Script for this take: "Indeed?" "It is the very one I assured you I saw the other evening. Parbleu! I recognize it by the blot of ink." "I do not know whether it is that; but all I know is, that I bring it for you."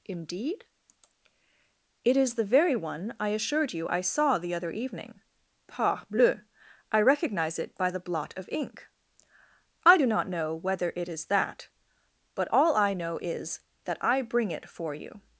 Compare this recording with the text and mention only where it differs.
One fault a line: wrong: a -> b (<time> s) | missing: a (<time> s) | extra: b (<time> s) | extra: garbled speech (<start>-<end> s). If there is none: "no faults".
no faults